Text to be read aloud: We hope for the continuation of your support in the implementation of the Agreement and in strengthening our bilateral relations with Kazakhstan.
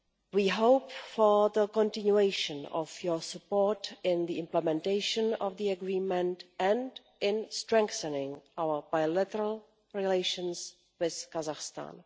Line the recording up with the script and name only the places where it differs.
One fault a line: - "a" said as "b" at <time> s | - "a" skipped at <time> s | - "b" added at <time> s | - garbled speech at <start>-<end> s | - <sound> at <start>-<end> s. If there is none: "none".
none